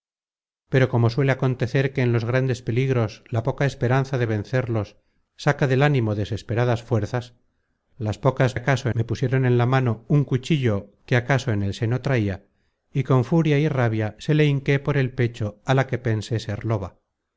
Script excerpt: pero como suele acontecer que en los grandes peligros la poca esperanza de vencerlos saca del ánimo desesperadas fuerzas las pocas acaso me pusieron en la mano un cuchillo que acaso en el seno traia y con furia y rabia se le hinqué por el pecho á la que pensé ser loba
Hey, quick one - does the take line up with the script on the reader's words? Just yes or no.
yes